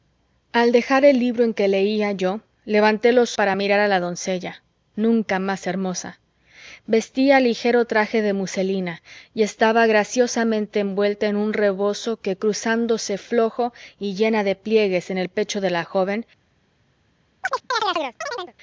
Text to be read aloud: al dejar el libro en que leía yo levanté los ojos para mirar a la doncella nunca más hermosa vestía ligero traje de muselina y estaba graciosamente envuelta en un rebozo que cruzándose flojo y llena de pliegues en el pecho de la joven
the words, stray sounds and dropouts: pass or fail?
fail